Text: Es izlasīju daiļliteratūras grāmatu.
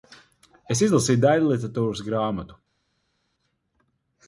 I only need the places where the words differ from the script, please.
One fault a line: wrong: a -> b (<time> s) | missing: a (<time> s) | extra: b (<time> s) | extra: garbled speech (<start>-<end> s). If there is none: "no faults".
no faults